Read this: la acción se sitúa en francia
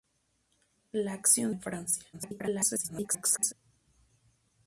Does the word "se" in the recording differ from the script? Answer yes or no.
yes